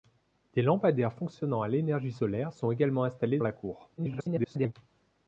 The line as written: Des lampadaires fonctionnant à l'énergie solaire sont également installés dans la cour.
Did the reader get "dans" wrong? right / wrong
wrong